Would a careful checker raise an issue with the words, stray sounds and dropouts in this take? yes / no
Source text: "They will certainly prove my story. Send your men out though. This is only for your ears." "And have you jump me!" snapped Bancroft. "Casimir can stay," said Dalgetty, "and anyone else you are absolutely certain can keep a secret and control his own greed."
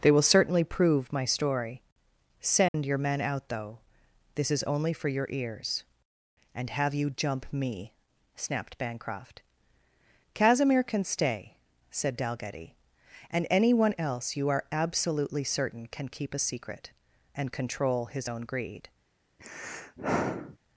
yes